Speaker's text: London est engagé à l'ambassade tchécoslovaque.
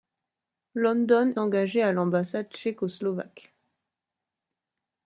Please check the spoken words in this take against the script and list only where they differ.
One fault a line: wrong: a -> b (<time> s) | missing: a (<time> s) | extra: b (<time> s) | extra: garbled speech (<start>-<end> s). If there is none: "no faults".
missing: est (1.4 s)